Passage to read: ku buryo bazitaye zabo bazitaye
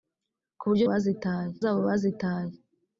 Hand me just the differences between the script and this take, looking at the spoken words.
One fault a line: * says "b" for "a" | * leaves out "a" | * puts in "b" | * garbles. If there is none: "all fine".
all fine